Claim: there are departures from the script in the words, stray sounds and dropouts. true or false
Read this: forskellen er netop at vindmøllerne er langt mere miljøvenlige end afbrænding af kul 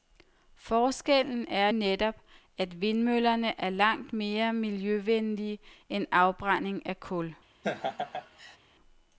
true